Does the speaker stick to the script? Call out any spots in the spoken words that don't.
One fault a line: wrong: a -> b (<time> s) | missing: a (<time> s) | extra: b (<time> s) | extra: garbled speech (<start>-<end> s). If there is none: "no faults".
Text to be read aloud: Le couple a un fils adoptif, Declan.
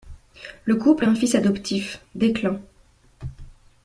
no faults